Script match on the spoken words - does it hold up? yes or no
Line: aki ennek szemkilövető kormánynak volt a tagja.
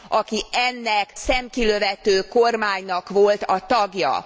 yes